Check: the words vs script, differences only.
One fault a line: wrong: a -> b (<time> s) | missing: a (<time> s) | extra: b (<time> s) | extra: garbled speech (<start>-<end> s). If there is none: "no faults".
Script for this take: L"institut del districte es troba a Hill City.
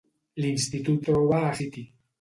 missing: del districte es (1.0 s)
missing: Hill (1.6 s)